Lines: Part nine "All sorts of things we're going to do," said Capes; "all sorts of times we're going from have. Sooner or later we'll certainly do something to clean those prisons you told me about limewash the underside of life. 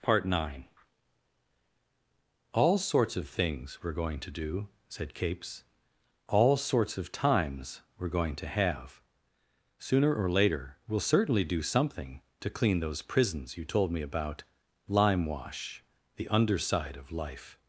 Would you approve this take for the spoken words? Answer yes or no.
no